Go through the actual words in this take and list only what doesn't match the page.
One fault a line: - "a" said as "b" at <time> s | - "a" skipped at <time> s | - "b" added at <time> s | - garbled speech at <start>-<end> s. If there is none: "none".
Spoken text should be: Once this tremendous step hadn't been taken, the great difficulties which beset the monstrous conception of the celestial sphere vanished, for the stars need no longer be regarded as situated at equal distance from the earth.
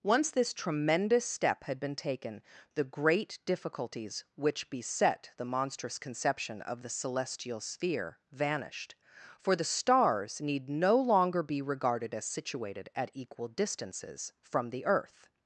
- "hadn't" said as "had" at 1.6 s
- "distance" said as "distances" at 13.5 s